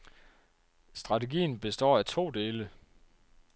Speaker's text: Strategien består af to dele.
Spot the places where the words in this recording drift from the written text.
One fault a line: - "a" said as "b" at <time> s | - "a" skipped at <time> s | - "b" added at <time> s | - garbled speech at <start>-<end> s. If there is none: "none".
none